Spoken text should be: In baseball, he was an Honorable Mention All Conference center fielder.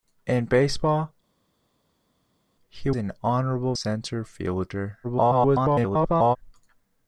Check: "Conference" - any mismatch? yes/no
yes